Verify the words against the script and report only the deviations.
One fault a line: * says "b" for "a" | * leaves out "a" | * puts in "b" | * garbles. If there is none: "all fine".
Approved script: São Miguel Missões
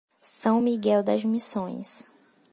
* puts in "das"